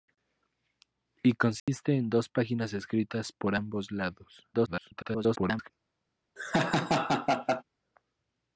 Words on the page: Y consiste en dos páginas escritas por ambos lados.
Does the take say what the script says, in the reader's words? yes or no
no